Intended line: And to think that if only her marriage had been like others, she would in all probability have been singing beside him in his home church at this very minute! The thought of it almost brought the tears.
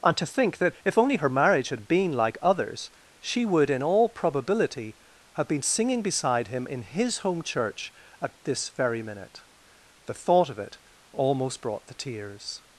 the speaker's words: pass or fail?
pass